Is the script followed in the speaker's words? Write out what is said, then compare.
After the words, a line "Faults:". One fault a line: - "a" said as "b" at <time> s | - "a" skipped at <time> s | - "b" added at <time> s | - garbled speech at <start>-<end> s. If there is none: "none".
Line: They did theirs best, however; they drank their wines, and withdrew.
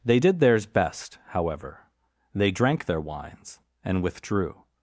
They did theirs best, however; they drank their wines, and withdrew.
Faults:
none